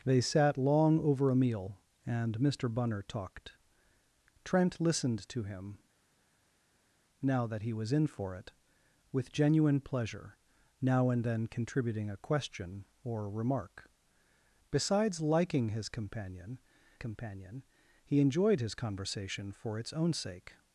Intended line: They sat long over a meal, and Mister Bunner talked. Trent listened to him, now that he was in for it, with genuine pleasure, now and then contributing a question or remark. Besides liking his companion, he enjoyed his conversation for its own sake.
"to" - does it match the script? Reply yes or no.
yes